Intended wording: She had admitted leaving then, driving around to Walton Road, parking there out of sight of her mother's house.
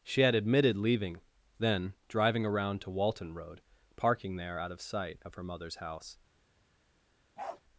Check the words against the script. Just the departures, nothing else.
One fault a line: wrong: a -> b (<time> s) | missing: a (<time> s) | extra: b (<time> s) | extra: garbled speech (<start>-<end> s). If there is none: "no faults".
no faults